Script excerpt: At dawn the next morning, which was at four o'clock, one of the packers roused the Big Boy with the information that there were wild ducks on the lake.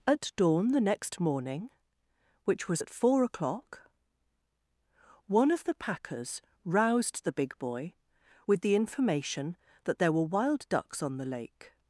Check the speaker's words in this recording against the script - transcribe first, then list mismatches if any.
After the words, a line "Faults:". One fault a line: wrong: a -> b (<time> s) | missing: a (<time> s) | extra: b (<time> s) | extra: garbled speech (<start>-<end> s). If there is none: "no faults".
At dawn the next morning, which was at four o'clock, one of the packers roused the Big Boy with the information that there were wild ducks on the lake.
Faults:
no faults